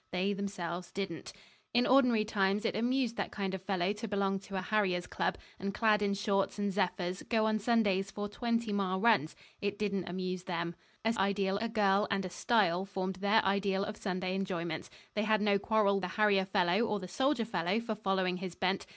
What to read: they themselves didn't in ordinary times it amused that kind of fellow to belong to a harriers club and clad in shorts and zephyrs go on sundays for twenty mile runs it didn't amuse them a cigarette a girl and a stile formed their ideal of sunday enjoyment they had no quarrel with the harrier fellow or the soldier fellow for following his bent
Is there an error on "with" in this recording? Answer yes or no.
yes